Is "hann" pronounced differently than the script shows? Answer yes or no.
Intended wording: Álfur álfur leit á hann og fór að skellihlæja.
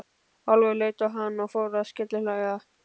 no